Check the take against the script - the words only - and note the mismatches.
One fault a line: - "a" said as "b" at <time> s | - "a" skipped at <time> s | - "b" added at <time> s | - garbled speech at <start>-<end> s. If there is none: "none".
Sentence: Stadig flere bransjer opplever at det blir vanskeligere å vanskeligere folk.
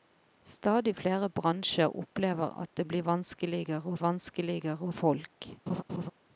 none